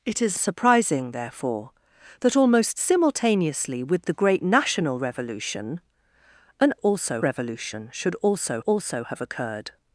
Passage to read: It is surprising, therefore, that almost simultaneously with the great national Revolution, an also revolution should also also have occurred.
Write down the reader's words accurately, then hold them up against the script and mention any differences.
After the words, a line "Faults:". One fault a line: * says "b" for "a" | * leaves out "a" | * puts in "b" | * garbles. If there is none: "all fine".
It is surprising, therefore, that almost simultaneously with the great national Revolution, an also revolution should also also have occurred.
Faults:
all fine